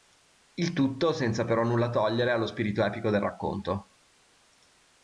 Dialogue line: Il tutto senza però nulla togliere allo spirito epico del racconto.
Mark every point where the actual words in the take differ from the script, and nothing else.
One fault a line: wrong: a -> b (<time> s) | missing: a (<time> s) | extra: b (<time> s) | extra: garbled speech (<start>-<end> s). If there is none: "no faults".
no faults